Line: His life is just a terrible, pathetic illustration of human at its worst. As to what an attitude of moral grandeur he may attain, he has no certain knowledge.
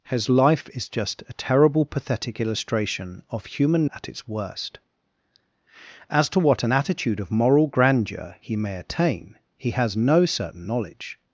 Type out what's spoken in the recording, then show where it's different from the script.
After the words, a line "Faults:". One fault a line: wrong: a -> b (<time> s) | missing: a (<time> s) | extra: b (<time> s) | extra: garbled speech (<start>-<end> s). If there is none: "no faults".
His life is just a terrible, pathetic illustration of human at its worst. As to what an attitude of moral grandeur he may attain, he has no certain knowledge.
Faults:
no faults